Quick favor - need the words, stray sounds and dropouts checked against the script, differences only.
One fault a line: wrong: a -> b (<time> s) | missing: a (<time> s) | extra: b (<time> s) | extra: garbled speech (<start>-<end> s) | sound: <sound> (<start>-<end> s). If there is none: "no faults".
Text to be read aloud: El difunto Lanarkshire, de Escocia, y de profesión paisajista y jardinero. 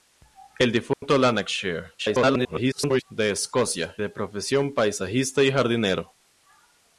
sound: dropout (0.9-1.0 s)
extra: garbled speech (2.0-3.0 s)
missing: y (3.9 s)